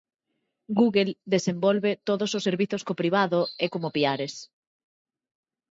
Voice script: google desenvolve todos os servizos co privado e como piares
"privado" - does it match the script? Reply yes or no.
yes